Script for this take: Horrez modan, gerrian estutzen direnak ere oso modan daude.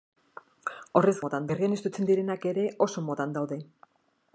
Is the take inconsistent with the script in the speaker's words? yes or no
no